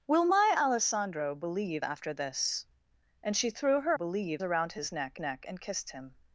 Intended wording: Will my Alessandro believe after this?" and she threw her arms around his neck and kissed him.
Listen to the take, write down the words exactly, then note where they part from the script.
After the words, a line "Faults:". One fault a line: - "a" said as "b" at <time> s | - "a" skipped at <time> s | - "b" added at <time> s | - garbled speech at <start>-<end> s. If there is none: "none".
Will my Alessandro believe after this?" and she threw her believe around his neck neck and kissed him.
Faults:
- "arms" said as "believe" at 3.9 s
- "neck" added at 5.2 s